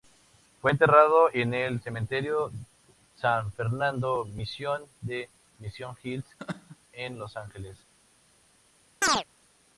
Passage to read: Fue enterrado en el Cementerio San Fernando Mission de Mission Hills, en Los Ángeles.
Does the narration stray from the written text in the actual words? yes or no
no